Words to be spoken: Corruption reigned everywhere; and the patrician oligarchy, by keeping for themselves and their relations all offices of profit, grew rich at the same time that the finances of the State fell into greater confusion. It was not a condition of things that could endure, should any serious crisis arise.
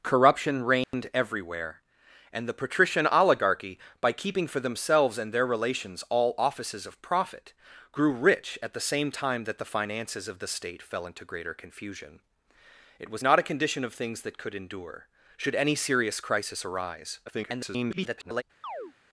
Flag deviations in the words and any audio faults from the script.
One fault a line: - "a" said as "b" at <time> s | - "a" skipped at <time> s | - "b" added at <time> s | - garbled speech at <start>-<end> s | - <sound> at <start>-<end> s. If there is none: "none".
- dropout at 0.8-0.9 s
- garbled speech at 17.3-18.4 s
- chirp at 18.6-18.9 s